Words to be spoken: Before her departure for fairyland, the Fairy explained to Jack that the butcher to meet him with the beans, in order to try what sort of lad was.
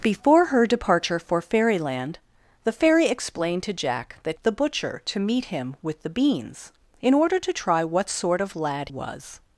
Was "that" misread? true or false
false